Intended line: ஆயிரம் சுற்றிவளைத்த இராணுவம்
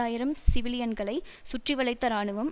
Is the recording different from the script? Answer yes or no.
yes